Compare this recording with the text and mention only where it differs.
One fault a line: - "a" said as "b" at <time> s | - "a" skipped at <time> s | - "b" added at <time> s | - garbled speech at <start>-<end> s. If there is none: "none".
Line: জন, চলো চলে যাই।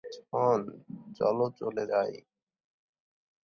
none